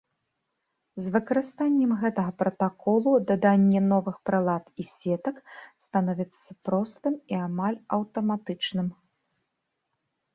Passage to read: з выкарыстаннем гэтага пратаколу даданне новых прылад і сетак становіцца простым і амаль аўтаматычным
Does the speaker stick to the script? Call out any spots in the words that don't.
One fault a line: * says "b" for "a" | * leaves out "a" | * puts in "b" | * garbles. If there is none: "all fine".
all fine